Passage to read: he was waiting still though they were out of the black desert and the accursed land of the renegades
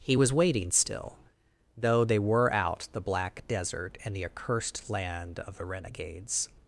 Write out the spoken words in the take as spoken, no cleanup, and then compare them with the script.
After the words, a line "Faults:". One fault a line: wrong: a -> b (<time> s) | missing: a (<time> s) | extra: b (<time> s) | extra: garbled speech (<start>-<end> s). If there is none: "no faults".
he was waiting still though they were out the black desert and the accursed land of the renegades
Faults:
missing: of (2.9 s)